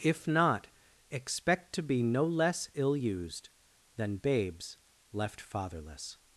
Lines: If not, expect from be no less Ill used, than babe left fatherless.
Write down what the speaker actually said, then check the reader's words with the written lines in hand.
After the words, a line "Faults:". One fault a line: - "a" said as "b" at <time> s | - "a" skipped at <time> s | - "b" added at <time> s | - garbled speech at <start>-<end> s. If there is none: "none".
If not, expect to be no less Ill used, than babes left fatherless.
Faults:
- "from" said as "to" at 1.7 s
- "babe" said as "babes" at 4.2 s